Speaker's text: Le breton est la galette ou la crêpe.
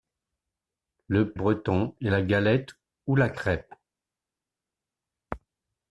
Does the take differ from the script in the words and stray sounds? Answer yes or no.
no